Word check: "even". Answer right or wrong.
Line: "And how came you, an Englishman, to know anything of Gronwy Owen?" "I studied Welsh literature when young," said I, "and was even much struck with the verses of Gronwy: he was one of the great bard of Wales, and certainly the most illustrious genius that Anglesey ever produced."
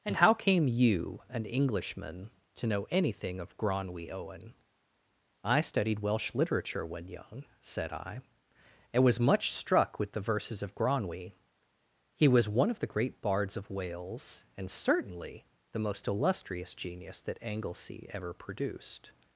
wrong